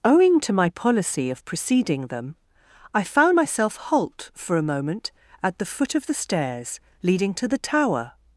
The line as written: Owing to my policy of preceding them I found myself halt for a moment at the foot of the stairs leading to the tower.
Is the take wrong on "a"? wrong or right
right